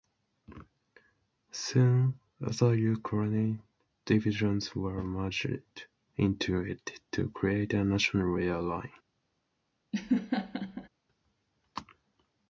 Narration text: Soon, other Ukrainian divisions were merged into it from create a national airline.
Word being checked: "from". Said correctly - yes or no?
no